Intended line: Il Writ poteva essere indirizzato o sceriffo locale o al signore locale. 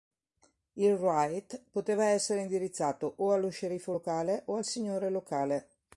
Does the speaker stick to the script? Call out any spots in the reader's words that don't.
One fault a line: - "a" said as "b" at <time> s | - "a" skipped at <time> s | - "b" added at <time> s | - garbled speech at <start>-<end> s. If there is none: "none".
- "allo" added at 3.3 s